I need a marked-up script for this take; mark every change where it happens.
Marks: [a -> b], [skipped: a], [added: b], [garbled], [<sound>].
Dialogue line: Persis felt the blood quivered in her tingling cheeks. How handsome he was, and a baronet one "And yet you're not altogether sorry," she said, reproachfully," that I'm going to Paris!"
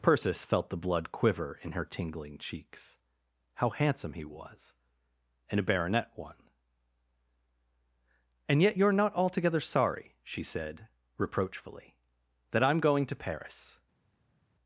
Persis felt the blood [quivered -> quiver] in her tingling cheeks. How handsome he was, and a baronet one "And yet you're not altogether sorry," she said, reproachfully," that I'm going to Paris!"